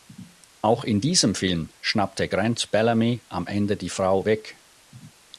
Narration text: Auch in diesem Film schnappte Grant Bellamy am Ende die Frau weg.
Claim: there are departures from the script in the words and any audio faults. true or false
false